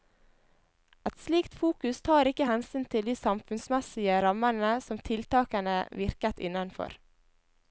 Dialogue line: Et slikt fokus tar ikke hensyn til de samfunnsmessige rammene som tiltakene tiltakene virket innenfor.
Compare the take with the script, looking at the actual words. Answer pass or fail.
fail